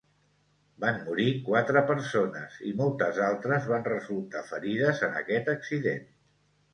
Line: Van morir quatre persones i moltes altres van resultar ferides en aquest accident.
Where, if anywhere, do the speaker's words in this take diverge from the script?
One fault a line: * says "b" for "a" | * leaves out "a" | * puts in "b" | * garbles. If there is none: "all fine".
all fine